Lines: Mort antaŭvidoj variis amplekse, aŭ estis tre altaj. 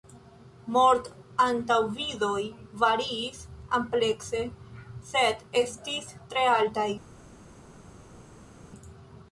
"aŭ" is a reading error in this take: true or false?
true